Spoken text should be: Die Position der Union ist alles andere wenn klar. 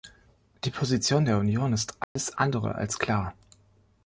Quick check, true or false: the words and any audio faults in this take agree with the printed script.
false